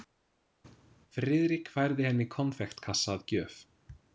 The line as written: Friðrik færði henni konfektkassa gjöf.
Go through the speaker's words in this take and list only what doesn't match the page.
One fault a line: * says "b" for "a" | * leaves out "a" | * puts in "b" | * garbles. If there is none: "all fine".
* puts in "að"